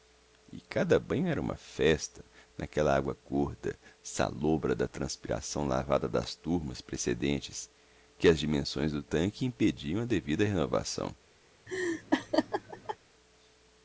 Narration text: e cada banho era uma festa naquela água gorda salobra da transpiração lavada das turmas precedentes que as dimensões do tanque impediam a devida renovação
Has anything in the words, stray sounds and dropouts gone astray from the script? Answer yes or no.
yes